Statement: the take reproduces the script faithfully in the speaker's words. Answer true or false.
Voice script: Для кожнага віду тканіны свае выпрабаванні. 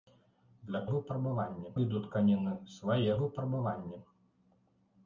false